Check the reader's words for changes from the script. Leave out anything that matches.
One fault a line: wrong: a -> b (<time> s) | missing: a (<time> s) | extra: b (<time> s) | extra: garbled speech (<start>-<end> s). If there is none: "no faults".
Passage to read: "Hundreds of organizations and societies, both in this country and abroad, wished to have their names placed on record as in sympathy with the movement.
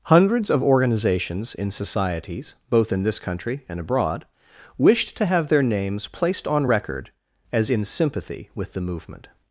wrong: and -> in (1.6 s)